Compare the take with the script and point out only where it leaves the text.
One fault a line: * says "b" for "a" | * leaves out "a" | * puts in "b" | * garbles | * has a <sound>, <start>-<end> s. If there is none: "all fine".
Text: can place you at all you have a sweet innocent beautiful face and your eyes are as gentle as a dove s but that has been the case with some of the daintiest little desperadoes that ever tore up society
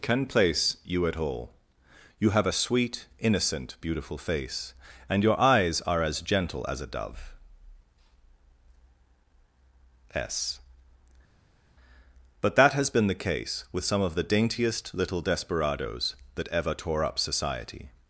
all fine